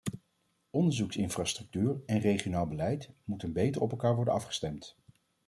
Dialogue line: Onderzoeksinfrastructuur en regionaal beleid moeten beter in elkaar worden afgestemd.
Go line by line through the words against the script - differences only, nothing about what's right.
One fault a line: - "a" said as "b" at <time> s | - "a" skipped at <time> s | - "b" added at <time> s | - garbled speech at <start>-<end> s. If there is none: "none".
- "in" said as "op" at 3.8 s